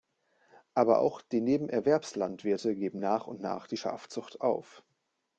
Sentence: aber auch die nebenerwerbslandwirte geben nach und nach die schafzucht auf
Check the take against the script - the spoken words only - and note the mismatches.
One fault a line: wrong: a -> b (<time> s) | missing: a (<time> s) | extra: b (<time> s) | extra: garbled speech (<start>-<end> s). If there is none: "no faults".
no faults